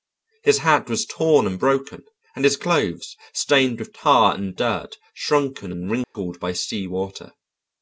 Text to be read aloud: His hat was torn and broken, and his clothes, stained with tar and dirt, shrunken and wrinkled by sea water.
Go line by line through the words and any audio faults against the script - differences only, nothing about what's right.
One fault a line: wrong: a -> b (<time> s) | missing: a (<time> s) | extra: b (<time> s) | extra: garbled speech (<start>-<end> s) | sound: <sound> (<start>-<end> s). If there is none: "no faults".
sound: dropout (6.0-6.1 s)